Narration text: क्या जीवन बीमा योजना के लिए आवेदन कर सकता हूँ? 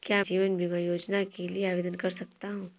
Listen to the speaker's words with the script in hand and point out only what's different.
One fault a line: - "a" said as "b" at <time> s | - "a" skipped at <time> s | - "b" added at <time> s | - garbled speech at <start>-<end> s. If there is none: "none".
none